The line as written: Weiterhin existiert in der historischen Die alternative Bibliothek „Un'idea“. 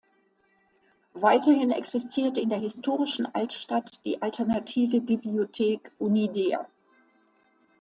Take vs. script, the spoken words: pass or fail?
fail